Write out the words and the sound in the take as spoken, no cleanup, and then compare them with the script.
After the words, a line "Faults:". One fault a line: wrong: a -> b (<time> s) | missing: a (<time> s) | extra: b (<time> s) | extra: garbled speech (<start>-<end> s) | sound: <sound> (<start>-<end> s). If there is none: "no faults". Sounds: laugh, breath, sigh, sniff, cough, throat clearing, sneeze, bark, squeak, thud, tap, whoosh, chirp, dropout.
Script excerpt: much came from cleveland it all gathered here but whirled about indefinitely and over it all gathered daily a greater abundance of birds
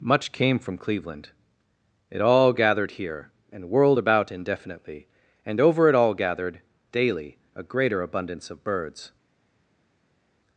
much came from cleveland it all gathered here and whirled about indefinitely and over it all gathered daily a greater abundance of birds
Faults:
wrong: but -> and (3.5 s)